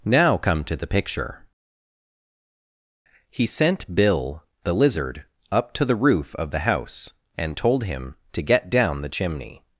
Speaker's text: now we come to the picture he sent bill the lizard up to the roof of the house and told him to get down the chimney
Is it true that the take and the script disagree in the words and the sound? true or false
true